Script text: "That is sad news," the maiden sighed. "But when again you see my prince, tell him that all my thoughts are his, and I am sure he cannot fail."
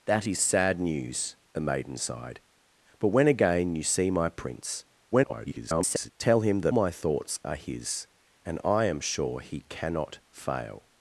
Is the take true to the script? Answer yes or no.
no